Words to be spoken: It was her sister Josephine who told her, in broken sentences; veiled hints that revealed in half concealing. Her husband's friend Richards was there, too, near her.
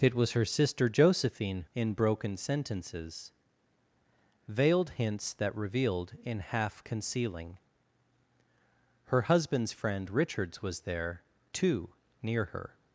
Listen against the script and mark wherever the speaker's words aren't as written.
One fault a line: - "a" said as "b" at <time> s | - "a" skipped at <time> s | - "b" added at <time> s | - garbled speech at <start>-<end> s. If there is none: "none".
- "who told her" skipped at 1.6 s